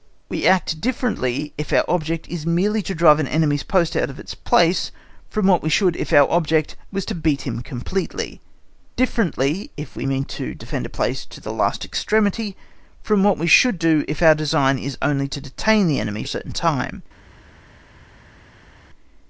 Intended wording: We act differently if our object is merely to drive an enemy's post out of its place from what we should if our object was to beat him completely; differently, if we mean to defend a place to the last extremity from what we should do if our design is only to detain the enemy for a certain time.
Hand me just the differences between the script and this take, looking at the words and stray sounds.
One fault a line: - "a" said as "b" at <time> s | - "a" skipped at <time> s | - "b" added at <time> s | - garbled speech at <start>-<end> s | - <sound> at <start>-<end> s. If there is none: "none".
- "for" skipped at 16.2 s